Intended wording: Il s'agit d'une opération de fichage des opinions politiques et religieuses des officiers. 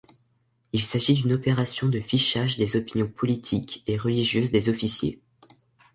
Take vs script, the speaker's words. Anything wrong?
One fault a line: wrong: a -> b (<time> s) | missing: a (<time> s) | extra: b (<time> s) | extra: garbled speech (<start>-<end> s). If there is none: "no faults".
no faults